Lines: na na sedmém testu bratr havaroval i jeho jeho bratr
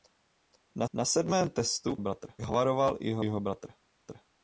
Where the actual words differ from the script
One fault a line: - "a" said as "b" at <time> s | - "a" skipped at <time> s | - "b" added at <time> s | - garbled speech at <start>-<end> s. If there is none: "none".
none